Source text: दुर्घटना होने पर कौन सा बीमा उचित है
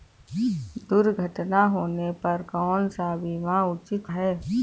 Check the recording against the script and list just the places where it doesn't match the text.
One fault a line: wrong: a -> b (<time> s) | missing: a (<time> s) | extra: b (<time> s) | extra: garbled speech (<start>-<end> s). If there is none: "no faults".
no faults